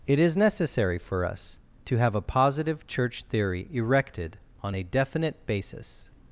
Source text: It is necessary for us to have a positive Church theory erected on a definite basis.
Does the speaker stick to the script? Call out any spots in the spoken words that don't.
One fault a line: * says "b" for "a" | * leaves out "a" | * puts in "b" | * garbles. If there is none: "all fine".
all fine